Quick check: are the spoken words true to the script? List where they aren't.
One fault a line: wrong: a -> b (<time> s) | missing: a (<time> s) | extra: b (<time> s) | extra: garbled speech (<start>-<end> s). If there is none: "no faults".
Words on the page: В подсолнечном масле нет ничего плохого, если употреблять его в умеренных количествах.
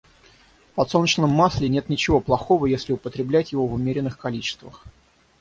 no faults